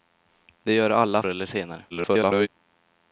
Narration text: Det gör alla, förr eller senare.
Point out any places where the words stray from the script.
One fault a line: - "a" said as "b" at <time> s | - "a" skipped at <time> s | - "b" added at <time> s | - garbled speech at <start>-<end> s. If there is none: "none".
- "förr" skipped at 1.2 s
- garbled speech at 1.9-2.5 s